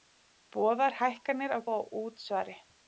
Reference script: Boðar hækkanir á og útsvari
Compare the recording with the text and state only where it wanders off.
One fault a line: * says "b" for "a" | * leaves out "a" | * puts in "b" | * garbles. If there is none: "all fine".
all fine